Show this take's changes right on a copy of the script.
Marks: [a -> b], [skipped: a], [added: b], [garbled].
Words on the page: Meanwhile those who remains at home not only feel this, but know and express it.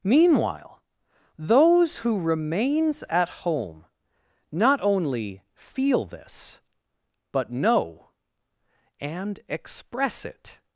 Meanwhile those who remains at home not only feel this, but know and express it.